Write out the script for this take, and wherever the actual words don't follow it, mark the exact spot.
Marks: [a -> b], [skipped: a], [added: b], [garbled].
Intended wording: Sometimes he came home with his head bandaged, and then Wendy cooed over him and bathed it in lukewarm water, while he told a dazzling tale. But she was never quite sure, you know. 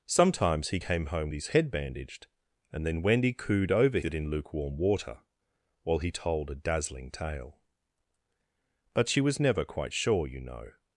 Sometimes he came home [skipped: with] his head bandaged, and then Wendy cooed over [skipped: him and bathed] it in lukewarm water, while he told a dazzling tale. But she was never quite sure, you know.